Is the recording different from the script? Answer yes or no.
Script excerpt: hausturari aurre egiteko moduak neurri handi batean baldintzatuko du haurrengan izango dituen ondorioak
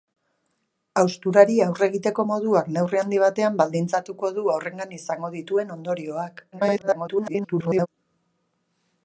yes